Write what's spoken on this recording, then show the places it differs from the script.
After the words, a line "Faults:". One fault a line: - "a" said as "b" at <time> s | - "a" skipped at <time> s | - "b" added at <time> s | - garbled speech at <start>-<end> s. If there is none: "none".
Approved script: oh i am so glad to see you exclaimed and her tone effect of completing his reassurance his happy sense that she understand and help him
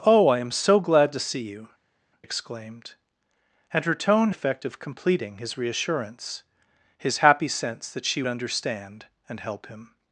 oh i am so glad to see you exclaimed and her tone effect of completing his reassurance his happy sense that she understand and help him
Faults:
none